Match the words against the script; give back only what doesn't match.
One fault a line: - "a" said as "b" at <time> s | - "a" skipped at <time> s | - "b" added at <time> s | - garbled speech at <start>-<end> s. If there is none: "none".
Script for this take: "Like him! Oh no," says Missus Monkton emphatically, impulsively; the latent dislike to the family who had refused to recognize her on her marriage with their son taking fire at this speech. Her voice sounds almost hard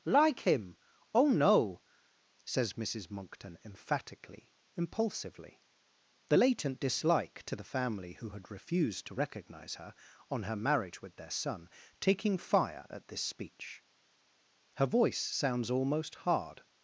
none